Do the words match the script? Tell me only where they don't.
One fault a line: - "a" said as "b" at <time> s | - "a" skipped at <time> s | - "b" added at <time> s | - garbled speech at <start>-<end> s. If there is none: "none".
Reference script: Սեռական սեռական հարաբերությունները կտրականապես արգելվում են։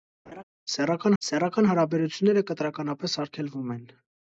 none